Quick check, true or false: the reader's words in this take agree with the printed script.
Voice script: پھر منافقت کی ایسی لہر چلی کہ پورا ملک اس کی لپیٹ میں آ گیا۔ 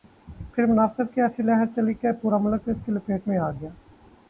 true